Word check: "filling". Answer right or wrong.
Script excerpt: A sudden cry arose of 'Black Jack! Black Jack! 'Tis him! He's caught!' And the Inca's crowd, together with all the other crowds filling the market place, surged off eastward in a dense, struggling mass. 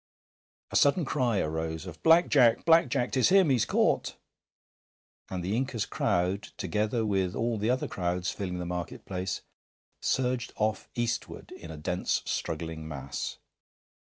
right